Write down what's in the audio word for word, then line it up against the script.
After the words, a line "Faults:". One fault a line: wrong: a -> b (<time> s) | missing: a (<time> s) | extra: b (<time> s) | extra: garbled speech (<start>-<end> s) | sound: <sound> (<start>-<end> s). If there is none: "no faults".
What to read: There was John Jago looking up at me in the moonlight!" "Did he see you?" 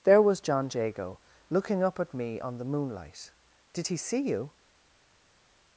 There was John Jago looking up at me on the moonlight!" "Did he see you?"
Faults:
wrong: in -> on (2.4 s)